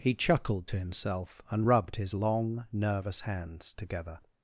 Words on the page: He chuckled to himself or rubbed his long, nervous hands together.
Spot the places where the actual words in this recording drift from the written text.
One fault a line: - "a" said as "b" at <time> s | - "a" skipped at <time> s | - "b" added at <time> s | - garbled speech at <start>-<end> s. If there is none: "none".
- "or" said as "and" at 1.5 s